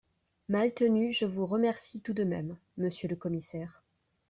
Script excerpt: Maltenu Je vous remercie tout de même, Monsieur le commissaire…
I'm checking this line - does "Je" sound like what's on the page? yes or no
yes